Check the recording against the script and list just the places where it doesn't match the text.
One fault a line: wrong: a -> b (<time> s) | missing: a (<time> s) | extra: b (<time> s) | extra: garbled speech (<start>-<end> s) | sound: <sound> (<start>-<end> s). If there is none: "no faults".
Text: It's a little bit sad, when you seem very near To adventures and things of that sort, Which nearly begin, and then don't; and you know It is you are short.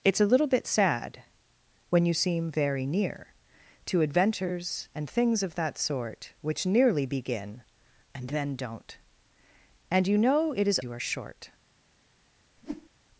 sound: whoosh (12.6-12.9 s)